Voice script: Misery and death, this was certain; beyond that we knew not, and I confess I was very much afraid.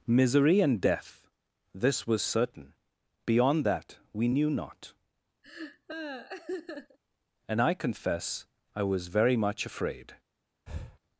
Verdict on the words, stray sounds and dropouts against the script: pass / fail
fail